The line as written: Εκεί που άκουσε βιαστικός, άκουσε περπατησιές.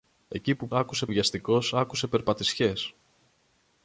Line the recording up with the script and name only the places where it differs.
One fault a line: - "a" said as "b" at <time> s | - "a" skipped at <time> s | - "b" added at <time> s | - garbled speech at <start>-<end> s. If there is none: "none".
none